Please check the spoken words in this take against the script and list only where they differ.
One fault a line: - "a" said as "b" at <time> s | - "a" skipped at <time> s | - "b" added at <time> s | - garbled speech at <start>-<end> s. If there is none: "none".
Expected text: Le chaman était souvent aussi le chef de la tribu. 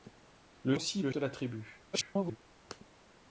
- "chaman était souvent" skipped at 0.8 s
- "chef" skipped at 1.1 s
- garbled speech at 1.9-2.4 s